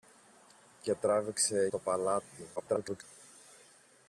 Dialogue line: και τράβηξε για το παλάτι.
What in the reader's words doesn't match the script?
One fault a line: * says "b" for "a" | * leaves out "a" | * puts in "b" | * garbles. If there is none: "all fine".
* leaves out "για"
* garbles